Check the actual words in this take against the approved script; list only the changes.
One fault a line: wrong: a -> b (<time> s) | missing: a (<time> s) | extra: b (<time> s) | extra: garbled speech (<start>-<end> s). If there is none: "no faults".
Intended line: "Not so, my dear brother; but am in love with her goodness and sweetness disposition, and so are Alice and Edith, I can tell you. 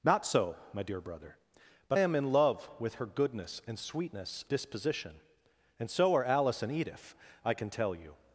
no faults